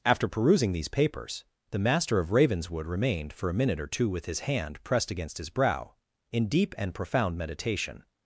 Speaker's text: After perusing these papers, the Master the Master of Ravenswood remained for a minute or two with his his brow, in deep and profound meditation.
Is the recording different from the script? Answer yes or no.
yes